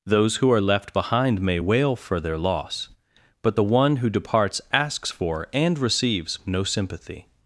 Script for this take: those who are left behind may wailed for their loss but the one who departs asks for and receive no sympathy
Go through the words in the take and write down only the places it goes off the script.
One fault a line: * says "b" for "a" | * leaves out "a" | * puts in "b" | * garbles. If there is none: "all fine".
* says "wail" for "wailed"
* says "receives" for "receive"